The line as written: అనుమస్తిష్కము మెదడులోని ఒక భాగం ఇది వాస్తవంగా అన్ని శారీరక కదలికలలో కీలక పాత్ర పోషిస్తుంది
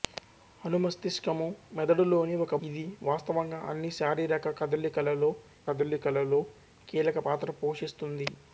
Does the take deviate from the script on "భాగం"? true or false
true